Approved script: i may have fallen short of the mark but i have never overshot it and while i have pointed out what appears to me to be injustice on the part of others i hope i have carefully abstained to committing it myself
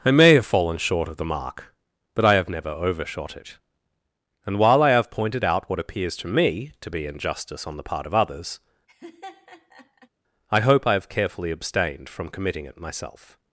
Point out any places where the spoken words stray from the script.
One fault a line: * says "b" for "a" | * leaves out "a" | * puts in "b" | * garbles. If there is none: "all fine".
* says "from" for "to"